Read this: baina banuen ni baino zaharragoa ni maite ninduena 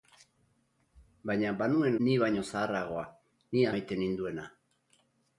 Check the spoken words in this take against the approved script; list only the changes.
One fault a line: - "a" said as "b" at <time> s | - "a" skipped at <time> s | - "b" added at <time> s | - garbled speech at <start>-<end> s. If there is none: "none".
none